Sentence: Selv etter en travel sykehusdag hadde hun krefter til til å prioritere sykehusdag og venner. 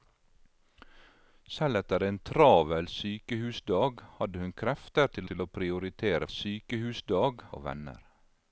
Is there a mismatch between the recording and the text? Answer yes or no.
no